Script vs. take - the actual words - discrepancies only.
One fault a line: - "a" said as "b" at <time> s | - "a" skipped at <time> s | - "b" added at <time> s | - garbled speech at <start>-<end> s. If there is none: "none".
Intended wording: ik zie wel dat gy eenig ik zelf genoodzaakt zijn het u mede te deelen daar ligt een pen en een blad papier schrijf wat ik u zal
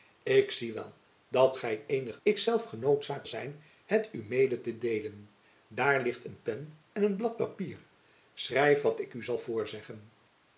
none